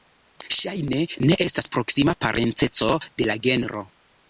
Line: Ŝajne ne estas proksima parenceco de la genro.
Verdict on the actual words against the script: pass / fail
pass